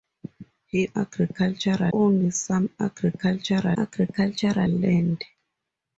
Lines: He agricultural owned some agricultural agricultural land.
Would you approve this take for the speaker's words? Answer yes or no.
yes